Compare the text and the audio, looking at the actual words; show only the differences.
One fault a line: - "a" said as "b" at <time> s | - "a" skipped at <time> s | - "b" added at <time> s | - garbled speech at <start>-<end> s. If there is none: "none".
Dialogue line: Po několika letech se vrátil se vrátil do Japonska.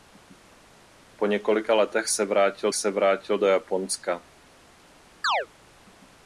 none